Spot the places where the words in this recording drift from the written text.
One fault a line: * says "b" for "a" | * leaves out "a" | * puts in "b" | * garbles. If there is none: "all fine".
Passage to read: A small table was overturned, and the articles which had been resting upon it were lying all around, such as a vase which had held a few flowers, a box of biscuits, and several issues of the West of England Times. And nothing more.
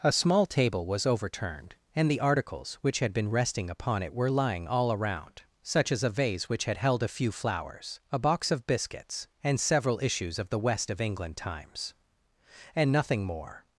all fine